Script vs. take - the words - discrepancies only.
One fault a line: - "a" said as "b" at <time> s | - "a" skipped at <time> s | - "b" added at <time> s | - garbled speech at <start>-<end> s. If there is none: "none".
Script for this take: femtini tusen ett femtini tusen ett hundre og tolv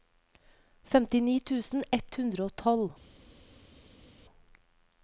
- "femtini tusen ett" skipped at 2.1 s